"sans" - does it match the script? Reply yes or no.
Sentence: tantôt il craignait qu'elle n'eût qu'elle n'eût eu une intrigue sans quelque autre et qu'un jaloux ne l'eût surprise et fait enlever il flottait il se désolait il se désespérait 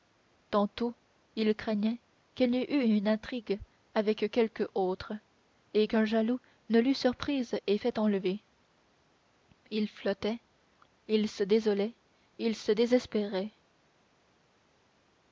no